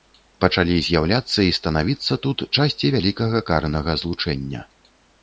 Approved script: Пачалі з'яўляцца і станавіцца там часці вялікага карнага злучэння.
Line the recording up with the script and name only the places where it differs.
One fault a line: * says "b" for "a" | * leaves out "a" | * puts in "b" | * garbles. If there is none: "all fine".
* says "тут" for "там"